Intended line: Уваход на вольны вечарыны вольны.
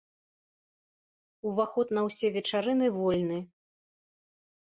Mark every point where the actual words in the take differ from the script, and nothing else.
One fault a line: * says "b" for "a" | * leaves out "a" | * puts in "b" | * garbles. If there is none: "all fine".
* says "ўсе" for "вольны"